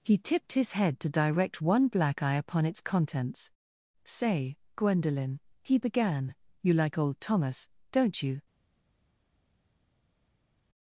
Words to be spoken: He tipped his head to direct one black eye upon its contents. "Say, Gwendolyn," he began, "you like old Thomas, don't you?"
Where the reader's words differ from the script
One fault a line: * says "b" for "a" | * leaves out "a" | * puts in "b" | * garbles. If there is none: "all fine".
all fine